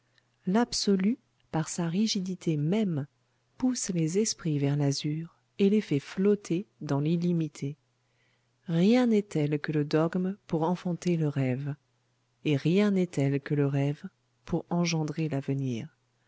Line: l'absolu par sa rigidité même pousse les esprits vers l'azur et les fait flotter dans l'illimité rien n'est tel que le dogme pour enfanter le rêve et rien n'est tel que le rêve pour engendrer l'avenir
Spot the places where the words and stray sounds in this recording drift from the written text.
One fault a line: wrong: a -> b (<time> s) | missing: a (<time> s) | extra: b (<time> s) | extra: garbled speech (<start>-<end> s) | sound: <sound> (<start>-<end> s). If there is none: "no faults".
no faults